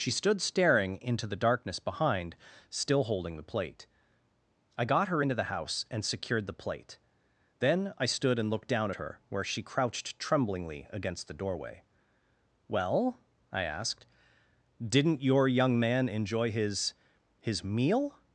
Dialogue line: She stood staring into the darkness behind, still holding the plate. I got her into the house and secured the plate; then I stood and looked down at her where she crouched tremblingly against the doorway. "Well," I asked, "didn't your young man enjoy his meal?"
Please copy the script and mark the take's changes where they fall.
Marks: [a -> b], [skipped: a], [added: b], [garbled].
She stood staring into the darkness behind, still holding the plate. I got her into the house and secured the plate; then I stood and looked down at her where she crouched tremblingly against the doorway. "Well," I asked, "didn't your young man enjoy his [added: his] meal?"